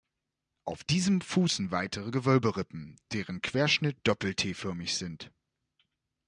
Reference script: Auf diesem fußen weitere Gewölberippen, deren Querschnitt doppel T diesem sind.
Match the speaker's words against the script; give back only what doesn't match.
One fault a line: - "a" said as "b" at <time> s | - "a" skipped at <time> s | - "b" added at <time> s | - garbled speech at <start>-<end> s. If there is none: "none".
- "diesem" said as "förmig" at 4.5 s